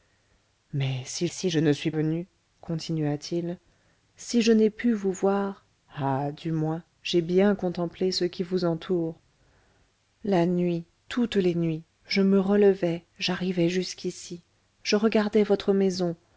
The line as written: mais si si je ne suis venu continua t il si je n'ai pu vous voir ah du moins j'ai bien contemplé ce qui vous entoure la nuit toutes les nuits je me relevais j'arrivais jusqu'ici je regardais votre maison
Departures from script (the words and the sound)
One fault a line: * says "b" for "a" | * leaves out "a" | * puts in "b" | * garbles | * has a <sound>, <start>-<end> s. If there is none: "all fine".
all fine